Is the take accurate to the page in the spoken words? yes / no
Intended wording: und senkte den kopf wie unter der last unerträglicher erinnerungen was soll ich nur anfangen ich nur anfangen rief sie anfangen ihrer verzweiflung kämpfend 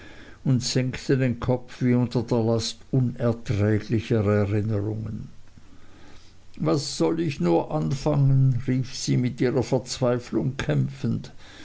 no